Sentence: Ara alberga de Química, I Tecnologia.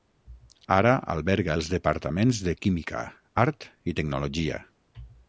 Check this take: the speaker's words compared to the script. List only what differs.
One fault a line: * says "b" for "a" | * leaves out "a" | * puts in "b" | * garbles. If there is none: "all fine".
* puts in "els Departaments"
* puts in "Art"